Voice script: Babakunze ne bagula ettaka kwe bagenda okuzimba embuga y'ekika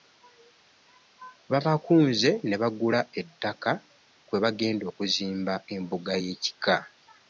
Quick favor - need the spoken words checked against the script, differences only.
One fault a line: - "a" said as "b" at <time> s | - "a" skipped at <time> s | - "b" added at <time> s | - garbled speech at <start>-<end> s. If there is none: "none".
none